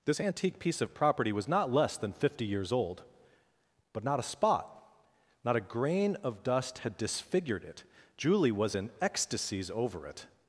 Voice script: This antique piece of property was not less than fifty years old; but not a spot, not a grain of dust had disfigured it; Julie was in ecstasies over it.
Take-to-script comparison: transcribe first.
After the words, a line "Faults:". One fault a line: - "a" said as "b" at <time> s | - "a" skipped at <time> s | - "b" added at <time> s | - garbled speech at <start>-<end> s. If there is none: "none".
This antique piece of property was not less than fifty years old; but not a spot, not a grain of dust had disfigured it; Julie was in ecstasies over it.
Faults:
none